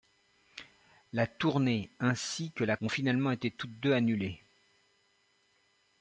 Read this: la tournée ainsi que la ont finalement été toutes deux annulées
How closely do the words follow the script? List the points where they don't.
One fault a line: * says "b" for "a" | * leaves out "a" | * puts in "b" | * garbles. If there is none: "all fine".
all fine